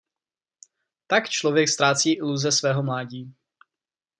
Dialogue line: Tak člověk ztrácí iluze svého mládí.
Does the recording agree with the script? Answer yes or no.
yes